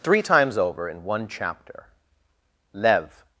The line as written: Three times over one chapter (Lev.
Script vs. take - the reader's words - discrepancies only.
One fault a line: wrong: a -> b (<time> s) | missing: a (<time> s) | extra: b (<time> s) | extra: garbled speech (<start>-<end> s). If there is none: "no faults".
extra: in (0.9 s)